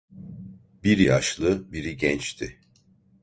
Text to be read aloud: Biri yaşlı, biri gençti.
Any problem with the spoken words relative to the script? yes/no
no